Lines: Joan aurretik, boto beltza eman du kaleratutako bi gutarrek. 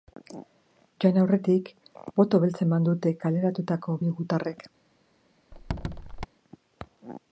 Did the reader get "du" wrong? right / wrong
wrong